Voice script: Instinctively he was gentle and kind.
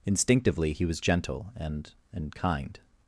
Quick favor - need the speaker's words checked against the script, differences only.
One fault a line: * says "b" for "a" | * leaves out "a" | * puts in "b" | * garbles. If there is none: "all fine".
* puts in "and"